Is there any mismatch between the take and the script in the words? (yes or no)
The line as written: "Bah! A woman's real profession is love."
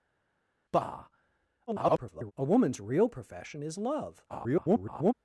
yes